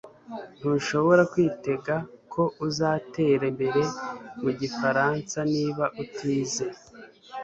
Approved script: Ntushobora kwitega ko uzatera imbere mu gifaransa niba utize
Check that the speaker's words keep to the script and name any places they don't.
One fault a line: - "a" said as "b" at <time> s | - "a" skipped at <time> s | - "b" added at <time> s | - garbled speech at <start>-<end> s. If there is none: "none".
none